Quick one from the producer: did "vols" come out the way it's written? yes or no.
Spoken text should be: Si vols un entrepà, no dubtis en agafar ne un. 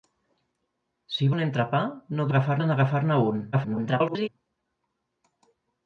no